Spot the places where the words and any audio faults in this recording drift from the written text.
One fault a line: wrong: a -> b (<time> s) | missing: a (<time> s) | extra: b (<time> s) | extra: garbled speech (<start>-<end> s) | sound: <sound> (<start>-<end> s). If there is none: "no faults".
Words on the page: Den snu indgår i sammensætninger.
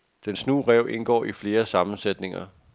extra: ræv (0.6 s)
extra: flere (1.3 s)